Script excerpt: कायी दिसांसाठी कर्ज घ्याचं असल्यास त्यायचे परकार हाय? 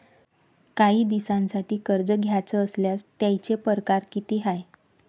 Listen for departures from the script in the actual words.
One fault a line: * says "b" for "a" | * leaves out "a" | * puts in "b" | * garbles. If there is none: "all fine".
* puts in "किती"